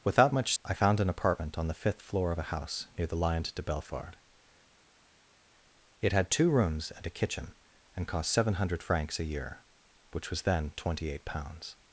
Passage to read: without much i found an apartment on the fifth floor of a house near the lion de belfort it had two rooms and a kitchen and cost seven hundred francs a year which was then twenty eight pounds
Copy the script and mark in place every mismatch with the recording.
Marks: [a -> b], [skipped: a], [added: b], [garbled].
without much i found an apartment on the fifth floor of a house near the lion de belfort it had two rooms and a kitchen and cost seven hundred francs a year which was then twenty eight pounds